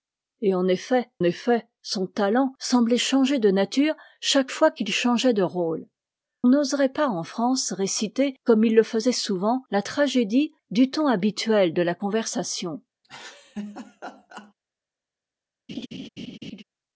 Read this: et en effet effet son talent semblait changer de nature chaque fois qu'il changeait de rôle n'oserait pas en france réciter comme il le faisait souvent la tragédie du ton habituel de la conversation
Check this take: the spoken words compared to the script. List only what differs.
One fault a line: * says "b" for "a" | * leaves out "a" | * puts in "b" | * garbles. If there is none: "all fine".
all fine